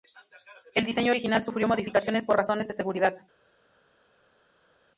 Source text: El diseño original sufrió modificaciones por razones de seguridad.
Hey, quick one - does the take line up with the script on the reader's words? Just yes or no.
yes